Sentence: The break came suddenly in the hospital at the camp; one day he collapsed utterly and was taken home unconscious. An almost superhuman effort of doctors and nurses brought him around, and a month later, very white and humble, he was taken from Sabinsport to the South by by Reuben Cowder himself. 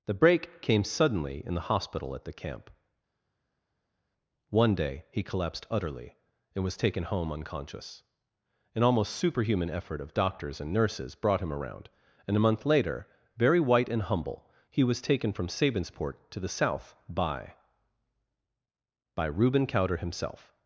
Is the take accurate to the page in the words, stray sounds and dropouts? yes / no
yes